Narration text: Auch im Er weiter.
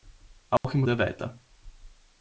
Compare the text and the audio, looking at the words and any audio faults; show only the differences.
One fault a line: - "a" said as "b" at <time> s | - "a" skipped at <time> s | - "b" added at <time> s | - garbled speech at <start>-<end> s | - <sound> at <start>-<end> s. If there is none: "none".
- dropout at 0.6-0.6 s